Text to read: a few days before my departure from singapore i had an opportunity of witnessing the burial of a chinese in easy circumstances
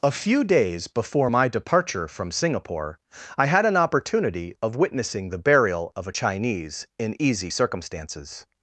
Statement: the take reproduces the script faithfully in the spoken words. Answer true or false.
true